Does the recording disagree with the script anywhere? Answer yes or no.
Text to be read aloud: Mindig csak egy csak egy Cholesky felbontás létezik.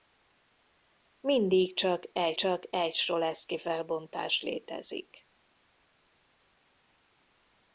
no